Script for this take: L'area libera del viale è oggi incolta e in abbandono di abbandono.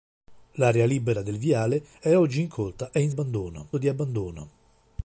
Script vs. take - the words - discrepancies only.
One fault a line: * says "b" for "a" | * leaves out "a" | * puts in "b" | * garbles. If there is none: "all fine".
all fine